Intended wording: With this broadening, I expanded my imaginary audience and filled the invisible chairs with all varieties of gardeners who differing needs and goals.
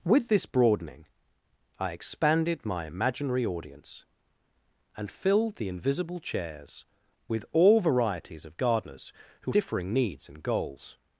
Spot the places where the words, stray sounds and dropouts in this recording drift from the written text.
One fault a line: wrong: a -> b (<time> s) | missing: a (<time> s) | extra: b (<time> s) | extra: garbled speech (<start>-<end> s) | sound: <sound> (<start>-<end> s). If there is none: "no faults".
no faults